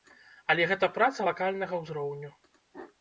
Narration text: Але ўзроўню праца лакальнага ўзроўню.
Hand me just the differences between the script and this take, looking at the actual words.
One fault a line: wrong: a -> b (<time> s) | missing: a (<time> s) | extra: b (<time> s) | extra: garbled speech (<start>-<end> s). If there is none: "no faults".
wrong: ўзроўню -> гэта (0.7 s)